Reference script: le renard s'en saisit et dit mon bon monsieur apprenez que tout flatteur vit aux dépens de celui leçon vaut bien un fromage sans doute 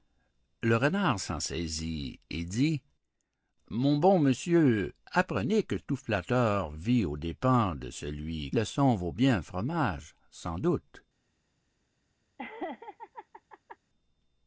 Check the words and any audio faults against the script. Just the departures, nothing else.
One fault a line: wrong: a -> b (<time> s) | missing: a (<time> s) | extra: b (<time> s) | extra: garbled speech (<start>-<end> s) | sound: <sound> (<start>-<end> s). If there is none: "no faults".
sound: laugh (12.4-13.8 s)